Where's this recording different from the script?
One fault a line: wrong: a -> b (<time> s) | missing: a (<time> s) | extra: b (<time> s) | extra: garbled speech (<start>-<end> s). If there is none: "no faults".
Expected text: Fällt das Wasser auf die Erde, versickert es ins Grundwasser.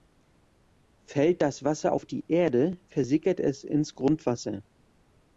no faults